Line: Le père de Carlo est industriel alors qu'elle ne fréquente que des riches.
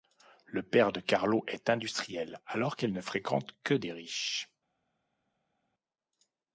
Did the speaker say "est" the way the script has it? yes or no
yes